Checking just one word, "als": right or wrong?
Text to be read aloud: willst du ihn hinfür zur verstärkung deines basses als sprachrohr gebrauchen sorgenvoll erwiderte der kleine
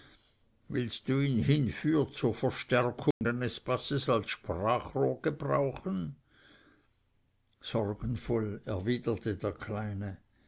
right